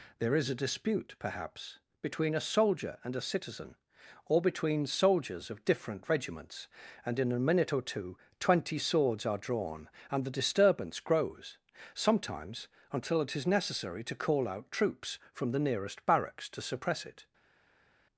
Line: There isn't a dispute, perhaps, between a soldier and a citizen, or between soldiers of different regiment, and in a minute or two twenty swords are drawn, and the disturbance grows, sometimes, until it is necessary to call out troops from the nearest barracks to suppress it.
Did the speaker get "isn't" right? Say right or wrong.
wrong